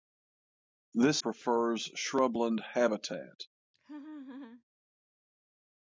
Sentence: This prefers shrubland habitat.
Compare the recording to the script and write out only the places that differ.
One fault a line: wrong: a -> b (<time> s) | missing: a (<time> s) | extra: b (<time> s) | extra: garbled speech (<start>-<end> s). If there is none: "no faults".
no faults